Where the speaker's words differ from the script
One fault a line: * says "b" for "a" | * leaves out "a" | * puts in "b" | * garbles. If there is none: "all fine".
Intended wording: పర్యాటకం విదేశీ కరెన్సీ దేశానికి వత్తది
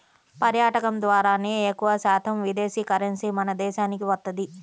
* puts in "ద్వారానే ఎక్కువశాతం"
* puts in "మన"